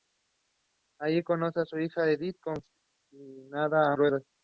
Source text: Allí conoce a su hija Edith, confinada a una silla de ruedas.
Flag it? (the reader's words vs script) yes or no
yes